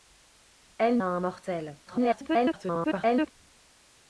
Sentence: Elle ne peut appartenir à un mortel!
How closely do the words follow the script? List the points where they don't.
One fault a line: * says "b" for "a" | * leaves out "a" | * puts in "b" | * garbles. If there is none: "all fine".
* leaves out "ne peut appartenir"
* garbles